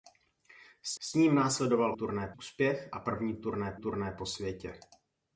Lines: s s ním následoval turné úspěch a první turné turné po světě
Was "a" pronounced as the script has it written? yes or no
yes